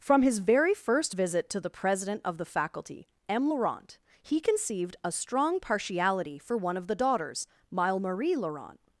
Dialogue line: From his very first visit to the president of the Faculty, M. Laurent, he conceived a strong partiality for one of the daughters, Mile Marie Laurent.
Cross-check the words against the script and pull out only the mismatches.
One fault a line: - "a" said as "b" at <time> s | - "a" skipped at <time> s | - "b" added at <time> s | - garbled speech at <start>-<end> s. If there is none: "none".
none